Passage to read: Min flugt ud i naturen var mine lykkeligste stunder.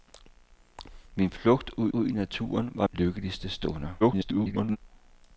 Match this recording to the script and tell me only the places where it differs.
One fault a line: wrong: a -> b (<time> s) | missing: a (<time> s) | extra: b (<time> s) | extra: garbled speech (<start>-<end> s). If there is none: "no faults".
extra: ud (1.9 s)
missing: mine (2.9 s)
extra: garbled speech (4.0-4.8 s)